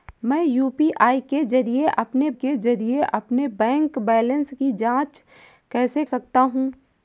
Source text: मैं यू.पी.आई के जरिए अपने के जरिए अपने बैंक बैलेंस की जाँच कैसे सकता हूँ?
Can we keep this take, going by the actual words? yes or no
yes